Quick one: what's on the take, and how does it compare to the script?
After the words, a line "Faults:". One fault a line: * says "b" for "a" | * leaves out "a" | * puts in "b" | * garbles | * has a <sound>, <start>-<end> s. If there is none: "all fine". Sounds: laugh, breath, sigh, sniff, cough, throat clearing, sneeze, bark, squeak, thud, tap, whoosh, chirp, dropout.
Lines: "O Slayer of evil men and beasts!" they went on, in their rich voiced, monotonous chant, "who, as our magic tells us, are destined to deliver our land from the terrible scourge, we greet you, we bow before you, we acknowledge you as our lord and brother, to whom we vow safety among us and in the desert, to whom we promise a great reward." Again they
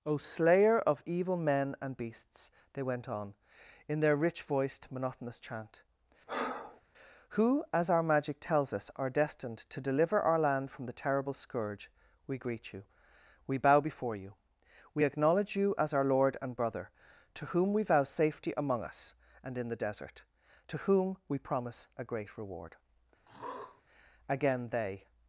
"O Slayer of evil men and beasts!" they went on, in their rich voiced, monotonous chant, "who, as our magic tells us, are destined to deliver our land from the terrible scourge, we greet you, we bow before you, we acknowledge you as our lord and brother, to whom we vow safety among us and in the desert, to whom we promise a great reward." Again they
Faults:
* has a breath, 6.3-6.8 s
* has a throat clearing, 23.3-23.8 s